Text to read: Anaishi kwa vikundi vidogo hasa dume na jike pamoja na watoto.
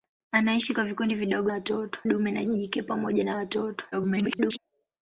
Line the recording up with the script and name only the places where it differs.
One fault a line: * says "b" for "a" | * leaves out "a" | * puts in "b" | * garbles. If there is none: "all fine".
* says "watoto" for "hasa"
* garbles